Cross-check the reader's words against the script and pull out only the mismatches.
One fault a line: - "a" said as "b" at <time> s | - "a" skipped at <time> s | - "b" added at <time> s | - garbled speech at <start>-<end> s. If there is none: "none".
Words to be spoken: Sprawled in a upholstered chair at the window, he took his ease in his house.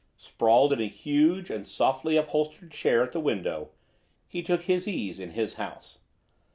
- "huge and softly" added at 0.9 s